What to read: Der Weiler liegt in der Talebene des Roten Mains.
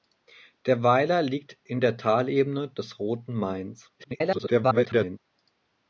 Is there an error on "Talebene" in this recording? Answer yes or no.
no